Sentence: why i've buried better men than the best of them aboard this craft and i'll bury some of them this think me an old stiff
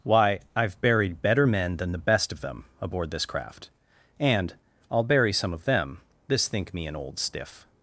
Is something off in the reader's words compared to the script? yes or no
no